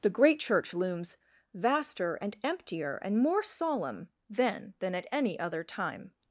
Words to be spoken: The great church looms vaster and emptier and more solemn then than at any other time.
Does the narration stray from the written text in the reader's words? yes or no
no